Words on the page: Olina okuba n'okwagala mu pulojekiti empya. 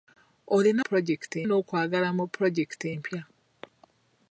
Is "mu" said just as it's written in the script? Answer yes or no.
yes